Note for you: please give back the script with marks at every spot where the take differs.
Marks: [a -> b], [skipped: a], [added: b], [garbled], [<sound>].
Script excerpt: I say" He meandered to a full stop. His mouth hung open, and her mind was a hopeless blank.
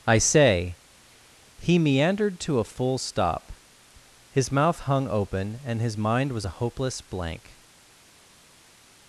I say" He meandered to a full stop. His mouth hung open, and [her -> his] mind was a hopeless blank.